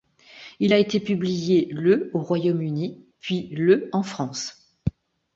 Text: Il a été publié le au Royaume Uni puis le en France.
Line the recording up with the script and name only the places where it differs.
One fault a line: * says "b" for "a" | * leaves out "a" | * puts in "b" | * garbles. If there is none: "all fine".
all fine